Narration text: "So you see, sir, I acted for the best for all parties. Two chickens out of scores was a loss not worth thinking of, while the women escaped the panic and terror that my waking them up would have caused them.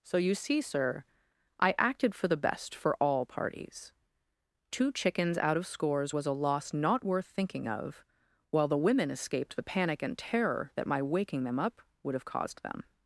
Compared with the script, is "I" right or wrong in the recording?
right